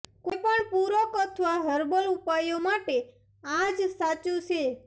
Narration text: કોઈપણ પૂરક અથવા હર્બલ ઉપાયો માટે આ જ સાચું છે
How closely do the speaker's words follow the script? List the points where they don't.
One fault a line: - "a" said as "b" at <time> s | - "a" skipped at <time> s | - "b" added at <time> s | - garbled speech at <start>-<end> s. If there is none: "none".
none